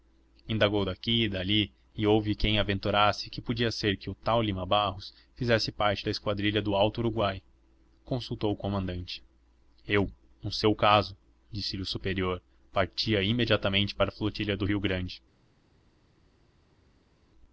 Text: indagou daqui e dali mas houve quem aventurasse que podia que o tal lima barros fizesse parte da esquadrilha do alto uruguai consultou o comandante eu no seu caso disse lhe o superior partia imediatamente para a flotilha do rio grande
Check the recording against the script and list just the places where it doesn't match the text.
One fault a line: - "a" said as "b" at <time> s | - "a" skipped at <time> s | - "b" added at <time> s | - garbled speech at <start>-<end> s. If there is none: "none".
- "mas" said as "e" at 1.9 s
- "ser" added at 3.7 s